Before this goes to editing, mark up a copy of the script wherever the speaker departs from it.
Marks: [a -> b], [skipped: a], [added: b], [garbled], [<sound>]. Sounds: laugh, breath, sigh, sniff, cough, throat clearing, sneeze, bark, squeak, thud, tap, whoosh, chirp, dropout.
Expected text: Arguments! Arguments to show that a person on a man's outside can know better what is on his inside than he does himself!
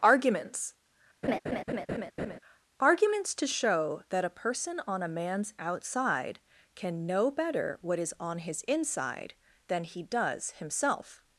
Arguments! [laugh] Arguments to show that a person on a man's outside can know better what is on his inside than he does himself!